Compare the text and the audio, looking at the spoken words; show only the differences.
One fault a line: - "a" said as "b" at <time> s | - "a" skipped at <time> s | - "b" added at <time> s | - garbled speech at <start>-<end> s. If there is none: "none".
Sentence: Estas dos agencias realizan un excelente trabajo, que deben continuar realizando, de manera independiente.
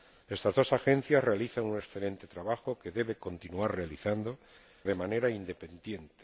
none